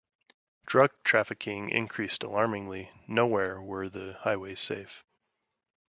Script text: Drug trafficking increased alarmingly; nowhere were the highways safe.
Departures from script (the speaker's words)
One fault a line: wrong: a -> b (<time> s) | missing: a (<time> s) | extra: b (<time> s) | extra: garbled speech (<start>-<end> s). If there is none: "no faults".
no faults